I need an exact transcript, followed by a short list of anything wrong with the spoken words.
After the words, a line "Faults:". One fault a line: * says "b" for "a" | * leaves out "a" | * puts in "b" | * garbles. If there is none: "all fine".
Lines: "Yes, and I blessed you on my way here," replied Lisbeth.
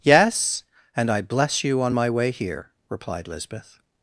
"Yes, and I bless you on my way here," replied Lisbeth.
Faults:
* says "bless" for "blessed"